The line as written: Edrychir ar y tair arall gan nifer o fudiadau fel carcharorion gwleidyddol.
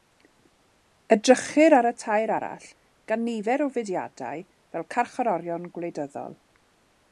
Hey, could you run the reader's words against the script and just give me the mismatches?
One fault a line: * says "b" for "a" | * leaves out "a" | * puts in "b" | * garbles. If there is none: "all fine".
all fine